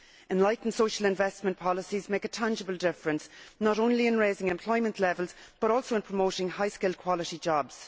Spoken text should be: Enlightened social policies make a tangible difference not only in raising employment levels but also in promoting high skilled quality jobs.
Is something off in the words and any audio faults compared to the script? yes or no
yes